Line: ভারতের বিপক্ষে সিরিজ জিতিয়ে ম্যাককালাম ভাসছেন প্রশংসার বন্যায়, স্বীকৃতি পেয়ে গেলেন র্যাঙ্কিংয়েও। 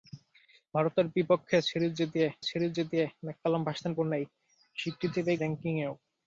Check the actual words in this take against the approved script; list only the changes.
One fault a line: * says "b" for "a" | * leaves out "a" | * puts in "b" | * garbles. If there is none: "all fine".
* puts in "সিরিজ জিতিয়ে"
* leaves out "প্রশংসার"
* leaves out "গেলেন"